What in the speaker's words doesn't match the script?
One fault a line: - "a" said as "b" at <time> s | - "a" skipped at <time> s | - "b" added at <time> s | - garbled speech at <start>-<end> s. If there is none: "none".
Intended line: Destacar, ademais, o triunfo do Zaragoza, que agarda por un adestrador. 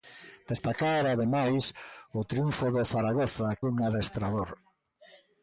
- "que agarda por" skipped at 3.5 s